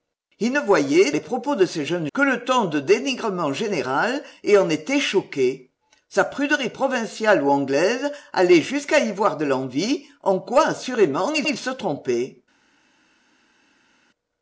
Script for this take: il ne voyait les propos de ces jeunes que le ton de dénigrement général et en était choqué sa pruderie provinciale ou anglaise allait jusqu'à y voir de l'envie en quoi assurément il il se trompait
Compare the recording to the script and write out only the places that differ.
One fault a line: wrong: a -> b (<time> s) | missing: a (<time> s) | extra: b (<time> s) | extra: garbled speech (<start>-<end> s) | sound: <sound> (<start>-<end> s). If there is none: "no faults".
no faults